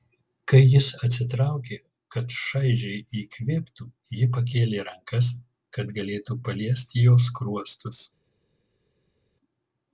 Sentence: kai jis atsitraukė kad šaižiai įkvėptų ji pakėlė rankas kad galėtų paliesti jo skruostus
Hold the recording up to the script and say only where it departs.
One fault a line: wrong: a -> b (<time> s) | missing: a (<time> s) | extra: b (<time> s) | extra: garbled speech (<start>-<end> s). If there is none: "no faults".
no faults